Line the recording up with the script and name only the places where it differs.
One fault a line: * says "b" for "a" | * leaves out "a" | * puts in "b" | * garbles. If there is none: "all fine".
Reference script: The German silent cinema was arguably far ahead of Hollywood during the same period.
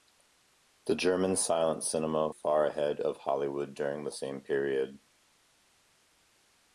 * leaves out "was arguably"